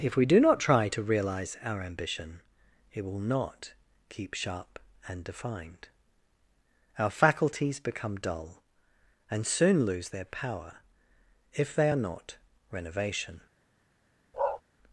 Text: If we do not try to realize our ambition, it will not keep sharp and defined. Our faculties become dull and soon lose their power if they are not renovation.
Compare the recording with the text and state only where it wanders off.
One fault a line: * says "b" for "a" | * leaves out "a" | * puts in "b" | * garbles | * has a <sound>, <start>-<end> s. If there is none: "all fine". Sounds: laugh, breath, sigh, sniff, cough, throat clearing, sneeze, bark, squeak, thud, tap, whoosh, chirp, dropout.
* has a bark, 14.3-14.6 s